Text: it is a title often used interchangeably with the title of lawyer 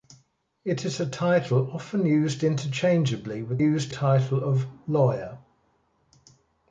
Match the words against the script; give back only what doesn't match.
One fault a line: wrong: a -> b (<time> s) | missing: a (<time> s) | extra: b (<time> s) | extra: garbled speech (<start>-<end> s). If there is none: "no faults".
wrong: the -> used (3.6 s)